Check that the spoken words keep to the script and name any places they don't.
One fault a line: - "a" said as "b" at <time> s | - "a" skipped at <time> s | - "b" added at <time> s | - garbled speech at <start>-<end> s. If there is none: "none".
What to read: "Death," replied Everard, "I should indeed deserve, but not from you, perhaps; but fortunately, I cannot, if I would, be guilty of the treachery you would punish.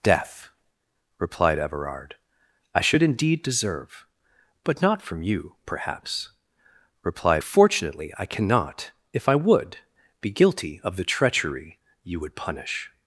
- "but" said as "replied" at 7.0 s